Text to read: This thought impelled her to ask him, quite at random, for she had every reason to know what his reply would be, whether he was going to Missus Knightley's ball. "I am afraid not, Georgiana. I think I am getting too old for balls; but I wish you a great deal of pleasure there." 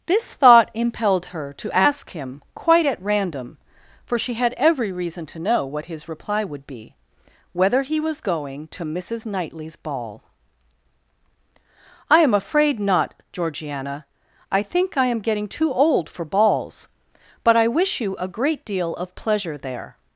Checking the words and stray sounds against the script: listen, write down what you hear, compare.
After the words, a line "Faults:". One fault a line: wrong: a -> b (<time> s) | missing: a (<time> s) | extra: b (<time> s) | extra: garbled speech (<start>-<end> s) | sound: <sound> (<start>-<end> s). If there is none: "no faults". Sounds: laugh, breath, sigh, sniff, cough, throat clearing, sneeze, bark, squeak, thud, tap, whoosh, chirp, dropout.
This thought impelled her to ask him, quite at random, for she had every reason to know what his reply would be, whether he was going to Missus Knightley's ball. "I am afraid not, Georgiana. I think I am getting too old for balls; but I wish you a great deal of pleasure there."
Faults:
no faults